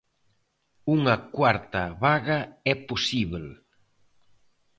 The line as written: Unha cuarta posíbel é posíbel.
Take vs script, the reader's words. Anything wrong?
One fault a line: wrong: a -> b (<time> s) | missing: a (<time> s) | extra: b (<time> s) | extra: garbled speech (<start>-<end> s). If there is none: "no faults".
wrong: posíbel -> vaga (2.0 s)